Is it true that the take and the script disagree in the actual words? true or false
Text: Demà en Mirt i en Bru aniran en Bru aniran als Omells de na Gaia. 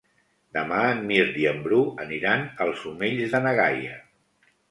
true